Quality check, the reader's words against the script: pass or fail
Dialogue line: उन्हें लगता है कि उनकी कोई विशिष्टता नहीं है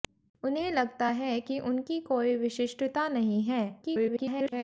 fail